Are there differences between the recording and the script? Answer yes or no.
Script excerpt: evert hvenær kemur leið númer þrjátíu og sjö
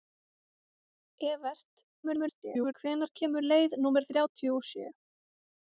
yes